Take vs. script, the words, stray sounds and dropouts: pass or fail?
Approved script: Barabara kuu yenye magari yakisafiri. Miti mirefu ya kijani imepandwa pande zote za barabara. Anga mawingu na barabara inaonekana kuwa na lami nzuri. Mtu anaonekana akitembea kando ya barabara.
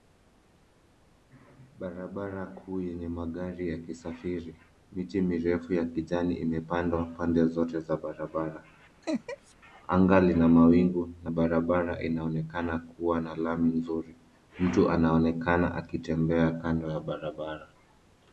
fail